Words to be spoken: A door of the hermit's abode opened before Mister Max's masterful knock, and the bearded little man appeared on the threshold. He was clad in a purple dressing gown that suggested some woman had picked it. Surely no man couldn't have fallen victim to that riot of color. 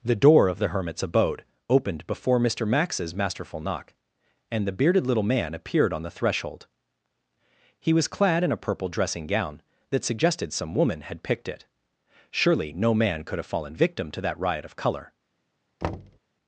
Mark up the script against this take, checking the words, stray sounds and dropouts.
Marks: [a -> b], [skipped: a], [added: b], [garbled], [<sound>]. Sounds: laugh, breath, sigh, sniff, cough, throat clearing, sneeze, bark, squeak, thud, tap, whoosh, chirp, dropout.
[A -> The] door of the hermit's abode opened before Mister Max's masterful knock, and the bearded little man appeared on the threshold. He was clad in a purple dressing gown that suggested some woman had picked it. Surely no man [couldn't -> could] have fallen victim to that riot of color. [thud]